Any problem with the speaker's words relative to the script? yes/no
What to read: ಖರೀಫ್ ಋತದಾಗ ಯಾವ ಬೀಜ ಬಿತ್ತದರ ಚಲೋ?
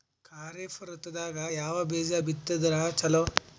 no